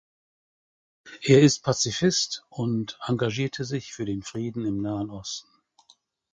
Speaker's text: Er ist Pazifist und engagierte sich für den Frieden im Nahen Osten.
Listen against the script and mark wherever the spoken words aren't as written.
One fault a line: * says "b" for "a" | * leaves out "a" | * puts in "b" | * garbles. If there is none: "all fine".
all fine